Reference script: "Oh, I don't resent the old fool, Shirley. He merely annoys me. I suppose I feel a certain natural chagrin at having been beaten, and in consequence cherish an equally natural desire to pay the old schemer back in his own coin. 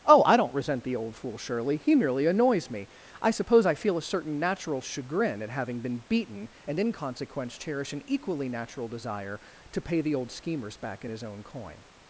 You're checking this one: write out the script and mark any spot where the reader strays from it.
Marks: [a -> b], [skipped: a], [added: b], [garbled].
"Oh, I don't resent the old fool, Shirley. He merely annoys me. I suppose I feel a certain natural chagrin at having been beaten, and in consequence cherish an equally natural desire to pay the old [schemer -> schemers] back in his own coin.